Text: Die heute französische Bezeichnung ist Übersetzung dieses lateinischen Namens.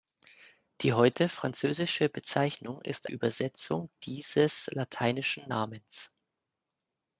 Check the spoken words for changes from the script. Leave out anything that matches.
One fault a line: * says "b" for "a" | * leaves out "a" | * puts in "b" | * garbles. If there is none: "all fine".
all fine